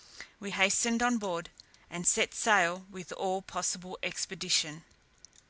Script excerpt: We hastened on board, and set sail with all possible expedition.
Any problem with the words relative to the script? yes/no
no